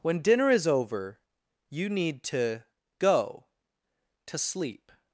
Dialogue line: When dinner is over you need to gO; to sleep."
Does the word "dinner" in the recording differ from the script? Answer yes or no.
no